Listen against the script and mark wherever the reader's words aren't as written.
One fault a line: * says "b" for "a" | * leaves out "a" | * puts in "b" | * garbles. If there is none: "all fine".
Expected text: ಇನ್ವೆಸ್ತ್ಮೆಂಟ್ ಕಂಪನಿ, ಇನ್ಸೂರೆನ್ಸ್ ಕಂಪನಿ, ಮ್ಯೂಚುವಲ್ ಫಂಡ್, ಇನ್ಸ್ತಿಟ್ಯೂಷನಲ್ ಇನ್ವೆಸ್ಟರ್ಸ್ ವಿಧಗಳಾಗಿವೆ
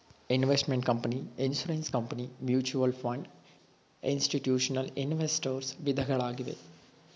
all fine